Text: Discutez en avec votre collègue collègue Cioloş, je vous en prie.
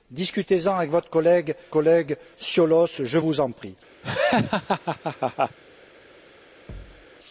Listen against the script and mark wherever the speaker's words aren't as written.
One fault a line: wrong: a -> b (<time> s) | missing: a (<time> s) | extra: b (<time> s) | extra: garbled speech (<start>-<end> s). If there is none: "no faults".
no faults